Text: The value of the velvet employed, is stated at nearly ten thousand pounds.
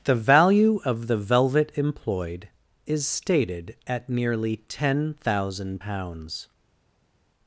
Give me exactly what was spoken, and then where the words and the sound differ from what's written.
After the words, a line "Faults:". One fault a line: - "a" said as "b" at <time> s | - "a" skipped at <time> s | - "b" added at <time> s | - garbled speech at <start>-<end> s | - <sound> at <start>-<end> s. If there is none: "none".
The value of the velvet employed, is stated at nearly ten thousand pounds.
Faults:
none